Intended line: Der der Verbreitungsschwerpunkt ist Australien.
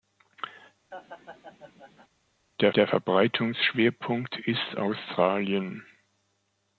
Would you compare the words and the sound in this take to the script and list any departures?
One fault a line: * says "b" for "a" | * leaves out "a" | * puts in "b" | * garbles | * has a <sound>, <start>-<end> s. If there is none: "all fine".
* has a laugh, 0.9-2.1 s